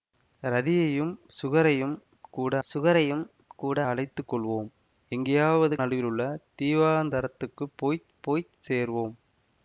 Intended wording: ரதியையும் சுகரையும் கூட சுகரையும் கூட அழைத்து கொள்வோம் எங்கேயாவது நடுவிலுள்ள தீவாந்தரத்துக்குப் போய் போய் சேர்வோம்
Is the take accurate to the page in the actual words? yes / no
yes